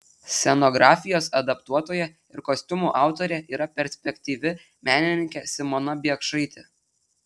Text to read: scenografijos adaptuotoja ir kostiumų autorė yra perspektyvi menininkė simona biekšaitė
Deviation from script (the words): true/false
false